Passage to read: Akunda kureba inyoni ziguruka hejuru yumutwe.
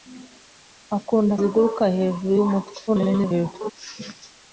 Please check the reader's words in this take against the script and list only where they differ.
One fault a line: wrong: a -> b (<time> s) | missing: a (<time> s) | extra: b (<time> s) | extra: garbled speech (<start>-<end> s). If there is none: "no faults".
missing: kureba inyoni (1.3 s)
extra: garbled speech (2.9-3.7 s)